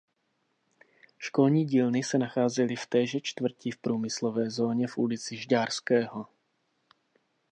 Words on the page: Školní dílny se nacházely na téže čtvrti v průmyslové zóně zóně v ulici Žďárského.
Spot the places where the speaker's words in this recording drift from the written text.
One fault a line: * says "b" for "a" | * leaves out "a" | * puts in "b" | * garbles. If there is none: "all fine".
* says "v" for "na"
* leaves out "zóně"